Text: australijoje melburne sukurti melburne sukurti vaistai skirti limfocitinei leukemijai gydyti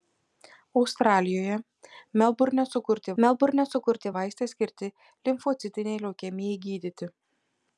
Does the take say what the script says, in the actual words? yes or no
yes